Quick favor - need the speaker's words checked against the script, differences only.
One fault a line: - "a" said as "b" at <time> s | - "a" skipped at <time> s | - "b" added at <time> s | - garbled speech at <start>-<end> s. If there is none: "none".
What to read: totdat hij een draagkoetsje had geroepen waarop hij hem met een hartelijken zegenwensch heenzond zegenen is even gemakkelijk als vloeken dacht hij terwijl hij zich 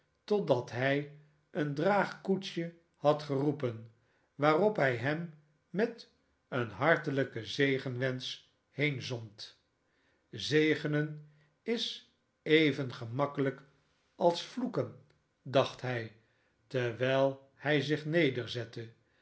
none